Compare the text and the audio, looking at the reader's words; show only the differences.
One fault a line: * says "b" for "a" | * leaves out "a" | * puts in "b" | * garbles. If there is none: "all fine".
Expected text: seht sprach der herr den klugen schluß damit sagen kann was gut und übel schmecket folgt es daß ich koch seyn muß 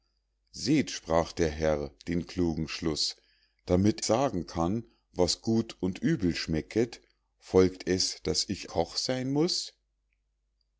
all fine